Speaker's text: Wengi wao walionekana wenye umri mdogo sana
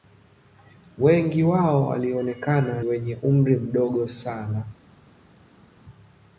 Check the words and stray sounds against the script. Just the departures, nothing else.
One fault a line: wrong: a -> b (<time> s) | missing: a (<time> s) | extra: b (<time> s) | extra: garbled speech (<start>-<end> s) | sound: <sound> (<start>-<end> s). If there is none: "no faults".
no faults